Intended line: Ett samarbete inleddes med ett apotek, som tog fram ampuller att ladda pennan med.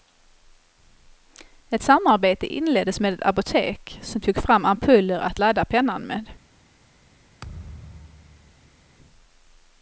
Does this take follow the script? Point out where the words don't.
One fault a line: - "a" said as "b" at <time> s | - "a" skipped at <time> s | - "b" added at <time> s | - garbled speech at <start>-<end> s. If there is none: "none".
none